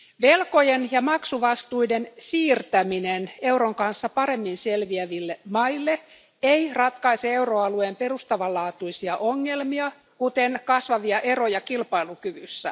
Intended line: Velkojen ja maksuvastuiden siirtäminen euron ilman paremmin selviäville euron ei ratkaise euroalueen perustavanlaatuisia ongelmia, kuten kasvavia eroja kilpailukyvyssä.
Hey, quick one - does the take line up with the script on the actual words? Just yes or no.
no